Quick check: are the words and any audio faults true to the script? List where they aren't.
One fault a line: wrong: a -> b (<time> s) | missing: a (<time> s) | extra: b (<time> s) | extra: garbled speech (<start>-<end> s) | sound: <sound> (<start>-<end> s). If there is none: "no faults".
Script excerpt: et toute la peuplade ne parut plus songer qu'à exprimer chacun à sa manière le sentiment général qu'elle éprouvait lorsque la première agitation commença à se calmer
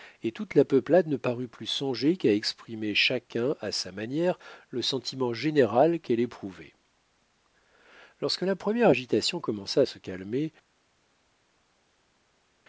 no faults